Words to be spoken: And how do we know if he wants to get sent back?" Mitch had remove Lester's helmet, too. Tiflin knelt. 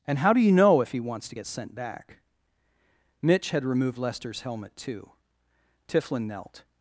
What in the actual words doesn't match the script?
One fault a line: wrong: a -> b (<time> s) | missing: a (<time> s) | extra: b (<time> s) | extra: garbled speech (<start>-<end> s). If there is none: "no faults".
wrong: we -> you (0.4 s)
wrong: remove -> removed (3.6 s)